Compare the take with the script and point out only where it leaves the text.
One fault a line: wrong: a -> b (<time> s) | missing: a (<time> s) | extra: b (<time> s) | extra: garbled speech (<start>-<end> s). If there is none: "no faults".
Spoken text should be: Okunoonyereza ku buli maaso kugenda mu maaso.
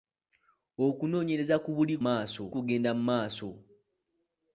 no faults